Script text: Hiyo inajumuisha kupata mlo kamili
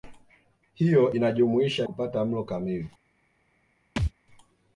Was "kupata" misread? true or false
false